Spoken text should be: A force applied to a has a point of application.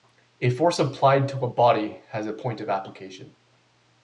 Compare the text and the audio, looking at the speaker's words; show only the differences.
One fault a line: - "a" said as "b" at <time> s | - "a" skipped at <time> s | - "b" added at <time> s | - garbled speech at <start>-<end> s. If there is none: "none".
- "body" added at 1.5 s